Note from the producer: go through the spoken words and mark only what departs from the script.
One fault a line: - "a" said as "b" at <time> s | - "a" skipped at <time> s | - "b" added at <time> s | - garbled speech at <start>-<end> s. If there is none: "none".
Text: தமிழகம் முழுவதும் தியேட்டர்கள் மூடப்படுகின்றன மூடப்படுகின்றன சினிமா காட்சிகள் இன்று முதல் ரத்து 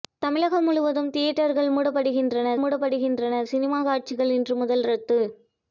none